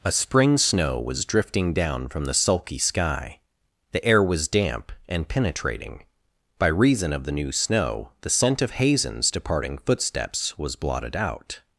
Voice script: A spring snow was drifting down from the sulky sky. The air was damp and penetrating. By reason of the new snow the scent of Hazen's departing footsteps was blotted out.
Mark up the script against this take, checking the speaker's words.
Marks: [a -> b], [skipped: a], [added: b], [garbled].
A spring snow was drifting down from the sulky sky. The air was damp and penetrating. By reason of the new snow the scent of Hazen's departing footsteps was blotted out.